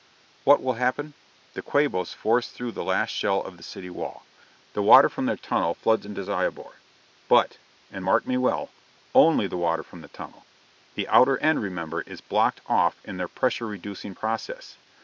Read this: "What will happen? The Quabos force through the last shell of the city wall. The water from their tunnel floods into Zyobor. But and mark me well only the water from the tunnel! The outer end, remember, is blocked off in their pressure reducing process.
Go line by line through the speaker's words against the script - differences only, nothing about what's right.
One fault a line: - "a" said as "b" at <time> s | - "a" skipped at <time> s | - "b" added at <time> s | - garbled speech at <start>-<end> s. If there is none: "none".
none